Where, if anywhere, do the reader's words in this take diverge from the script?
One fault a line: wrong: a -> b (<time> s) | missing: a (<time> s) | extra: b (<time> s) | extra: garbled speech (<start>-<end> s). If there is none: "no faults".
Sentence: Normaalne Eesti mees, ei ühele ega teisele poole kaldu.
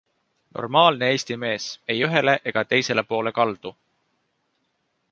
no faults